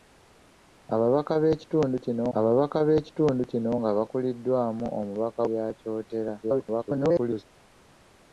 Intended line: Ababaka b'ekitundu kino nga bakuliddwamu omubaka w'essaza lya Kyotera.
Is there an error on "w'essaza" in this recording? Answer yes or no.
yes